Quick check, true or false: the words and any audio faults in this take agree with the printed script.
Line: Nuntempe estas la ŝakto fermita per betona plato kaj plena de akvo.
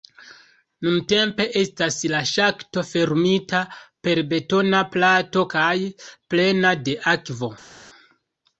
true